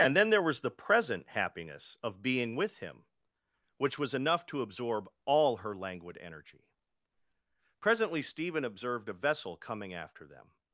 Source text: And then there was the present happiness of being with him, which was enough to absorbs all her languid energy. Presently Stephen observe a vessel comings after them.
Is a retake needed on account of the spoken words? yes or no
yes